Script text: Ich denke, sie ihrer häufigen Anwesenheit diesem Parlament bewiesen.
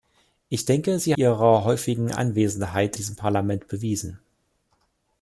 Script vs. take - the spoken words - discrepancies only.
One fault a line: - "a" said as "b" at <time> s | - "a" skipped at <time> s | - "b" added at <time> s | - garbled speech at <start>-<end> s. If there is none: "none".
none